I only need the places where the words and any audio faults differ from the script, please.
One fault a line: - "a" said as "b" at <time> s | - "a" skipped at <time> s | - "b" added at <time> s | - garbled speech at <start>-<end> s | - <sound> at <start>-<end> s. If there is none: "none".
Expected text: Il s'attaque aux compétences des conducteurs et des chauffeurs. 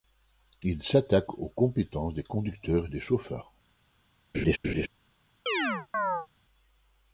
- laugh at 4.3-4.9 s
- chirp at 5.5-6.3 s